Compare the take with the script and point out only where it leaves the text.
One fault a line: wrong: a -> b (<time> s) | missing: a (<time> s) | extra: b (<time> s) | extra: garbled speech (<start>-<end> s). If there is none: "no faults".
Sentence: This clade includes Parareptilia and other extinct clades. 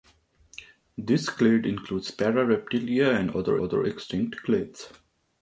extra: other (3.6 s)